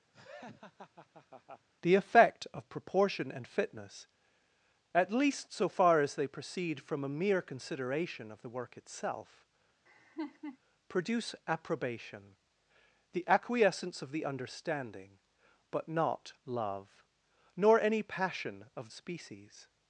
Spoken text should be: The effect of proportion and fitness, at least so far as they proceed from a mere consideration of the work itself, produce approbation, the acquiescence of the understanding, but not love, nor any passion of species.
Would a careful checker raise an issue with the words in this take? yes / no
no